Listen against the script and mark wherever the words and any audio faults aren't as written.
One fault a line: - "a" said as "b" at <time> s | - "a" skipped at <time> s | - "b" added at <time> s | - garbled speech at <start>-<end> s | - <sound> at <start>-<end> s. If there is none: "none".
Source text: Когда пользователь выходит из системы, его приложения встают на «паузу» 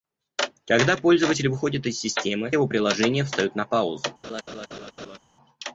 - laugh at 4.2-5.2 s